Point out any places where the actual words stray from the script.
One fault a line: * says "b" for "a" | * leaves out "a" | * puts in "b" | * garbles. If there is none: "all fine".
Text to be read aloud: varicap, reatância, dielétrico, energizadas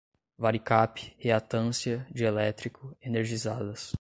all fine